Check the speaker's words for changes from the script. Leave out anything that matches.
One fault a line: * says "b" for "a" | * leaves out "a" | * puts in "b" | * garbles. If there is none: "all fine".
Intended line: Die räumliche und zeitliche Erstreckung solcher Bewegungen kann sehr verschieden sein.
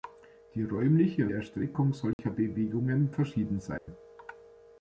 * leaves out "und zeitliche"
* leaves out "kann sehr"